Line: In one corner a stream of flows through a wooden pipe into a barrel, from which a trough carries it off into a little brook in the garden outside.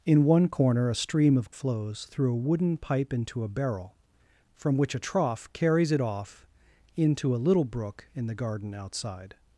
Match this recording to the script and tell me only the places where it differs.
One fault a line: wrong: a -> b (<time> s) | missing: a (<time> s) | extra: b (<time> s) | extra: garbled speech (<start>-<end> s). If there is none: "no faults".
no faults